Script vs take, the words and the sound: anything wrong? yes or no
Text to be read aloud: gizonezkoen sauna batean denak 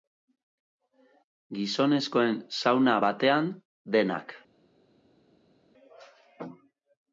no